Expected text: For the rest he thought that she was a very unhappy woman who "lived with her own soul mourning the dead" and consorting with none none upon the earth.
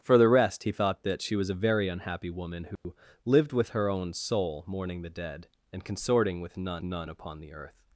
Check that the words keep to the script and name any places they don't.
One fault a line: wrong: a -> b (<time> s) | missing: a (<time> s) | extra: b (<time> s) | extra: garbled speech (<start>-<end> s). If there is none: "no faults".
no faults